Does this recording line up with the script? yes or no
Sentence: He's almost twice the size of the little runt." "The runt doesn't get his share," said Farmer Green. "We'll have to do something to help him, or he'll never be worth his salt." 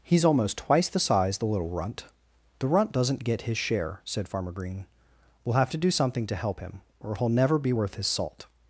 no